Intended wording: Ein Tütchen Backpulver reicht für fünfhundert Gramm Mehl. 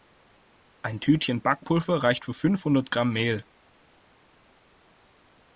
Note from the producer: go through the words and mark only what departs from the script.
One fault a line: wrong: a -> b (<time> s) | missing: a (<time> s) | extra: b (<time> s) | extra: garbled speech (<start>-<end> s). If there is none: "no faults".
no faults